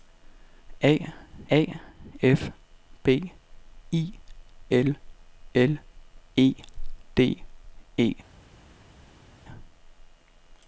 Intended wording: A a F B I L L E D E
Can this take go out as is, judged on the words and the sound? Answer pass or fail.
pass